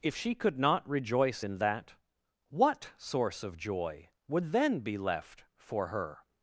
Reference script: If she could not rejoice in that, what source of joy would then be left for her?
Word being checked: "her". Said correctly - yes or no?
yes